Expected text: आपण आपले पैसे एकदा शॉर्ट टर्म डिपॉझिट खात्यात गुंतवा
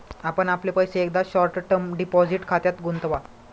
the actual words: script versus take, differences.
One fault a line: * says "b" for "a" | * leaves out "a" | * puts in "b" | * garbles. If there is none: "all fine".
all fine